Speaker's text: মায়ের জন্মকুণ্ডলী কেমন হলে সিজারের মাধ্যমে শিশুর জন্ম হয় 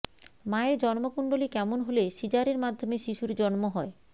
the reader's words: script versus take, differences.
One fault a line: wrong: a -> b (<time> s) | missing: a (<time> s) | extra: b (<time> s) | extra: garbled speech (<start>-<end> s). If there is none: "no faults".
no faults